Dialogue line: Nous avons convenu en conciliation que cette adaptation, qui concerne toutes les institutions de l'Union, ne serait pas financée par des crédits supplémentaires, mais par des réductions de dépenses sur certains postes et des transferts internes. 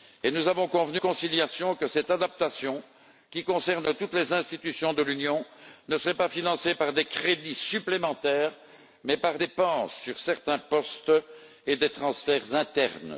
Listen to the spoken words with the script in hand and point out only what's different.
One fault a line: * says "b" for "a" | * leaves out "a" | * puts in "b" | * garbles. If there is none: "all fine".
* leaves out "en"
* leaves out "des réductions de"